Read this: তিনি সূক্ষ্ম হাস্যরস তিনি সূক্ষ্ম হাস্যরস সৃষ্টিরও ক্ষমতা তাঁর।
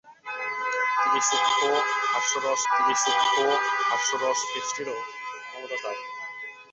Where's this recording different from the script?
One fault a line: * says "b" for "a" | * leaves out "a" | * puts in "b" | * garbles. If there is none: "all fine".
all fine